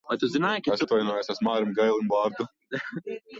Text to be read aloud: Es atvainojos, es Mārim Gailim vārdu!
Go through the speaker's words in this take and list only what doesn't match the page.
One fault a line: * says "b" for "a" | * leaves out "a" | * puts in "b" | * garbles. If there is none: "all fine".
all fine